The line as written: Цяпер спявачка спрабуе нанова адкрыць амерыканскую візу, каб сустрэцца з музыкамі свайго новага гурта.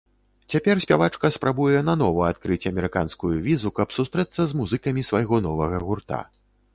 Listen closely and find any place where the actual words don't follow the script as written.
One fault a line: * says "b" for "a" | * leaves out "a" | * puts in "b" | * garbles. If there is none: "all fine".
all fine